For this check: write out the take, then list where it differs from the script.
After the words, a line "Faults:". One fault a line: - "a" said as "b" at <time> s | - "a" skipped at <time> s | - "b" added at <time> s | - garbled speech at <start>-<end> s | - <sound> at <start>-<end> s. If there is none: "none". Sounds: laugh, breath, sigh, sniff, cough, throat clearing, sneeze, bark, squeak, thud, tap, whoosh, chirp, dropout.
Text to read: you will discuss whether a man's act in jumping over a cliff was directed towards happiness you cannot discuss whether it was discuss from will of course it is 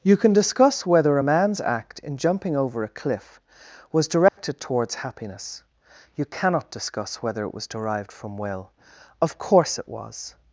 you can discuss whether a man's act in jumping over a cliff was directed towards happiness you cannot discuss whether it was derived from will of course it was
Faults:
- "will" said as "can" at 0.2 s
- dropout at 4.3-4.4 s
- "discuss" said as "derived" at 7.7 s
- "is" said as "was" at 9.9 s